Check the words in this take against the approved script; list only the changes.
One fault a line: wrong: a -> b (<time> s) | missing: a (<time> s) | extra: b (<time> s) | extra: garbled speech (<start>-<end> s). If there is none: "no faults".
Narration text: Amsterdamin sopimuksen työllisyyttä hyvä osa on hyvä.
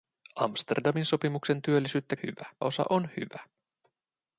no faults